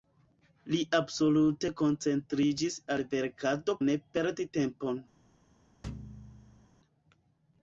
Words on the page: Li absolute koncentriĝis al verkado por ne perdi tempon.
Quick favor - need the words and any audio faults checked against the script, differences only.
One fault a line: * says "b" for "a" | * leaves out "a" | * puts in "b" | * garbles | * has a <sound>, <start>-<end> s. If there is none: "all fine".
* leaves out "por"
* has a thud, 5.8-6.7 s